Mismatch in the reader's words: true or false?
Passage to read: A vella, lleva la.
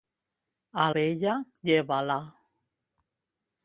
false